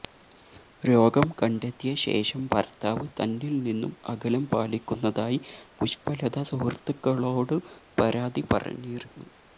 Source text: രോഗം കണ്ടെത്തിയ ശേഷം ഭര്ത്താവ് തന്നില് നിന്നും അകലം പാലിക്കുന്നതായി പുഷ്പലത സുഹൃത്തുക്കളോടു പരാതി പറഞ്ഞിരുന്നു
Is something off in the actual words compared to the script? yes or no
no